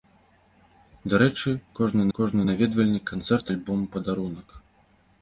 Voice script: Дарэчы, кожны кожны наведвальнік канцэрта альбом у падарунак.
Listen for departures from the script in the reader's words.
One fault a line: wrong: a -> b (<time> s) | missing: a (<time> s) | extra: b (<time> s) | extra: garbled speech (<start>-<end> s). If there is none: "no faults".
no faults